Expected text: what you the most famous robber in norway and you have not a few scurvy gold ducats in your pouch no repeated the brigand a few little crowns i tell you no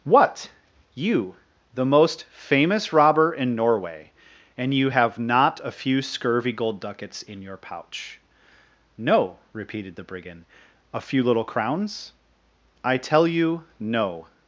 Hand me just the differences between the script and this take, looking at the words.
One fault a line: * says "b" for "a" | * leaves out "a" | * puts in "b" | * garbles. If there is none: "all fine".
all fine